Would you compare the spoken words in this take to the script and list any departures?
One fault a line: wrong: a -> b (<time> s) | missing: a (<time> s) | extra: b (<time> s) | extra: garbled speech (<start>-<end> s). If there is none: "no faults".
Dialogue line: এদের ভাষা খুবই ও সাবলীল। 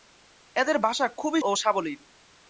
no faults